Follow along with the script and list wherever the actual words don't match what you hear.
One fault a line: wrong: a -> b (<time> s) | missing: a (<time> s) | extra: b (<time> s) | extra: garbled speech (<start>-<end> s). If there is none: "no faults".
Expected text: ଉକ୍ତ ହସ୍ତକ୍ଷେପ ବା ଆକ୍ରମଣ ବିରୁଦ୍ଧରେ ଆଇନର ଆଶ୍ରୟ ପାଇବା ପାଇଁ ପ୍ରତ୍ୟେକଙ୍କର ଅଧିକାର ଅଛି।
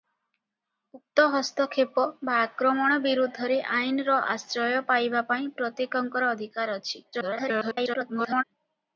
extra: garbled speech (7.1-8.4 s)